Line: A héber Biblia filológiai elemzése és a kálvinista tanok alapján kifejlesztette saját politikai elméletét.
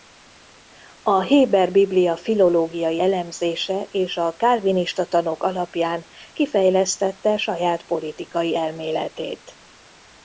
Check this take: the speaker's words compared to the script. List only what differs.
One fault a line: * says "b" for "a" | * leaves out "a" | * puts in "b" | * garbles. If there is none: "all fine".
all fine